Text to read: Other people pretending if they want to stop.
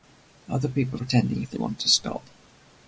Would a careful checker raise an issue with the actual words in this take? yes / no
no